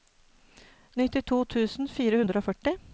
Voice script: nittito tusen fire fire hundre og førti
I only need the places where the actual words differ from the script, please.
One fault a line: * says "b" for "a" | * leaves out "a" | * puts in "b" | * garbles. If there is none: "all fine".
* leaves out "fire"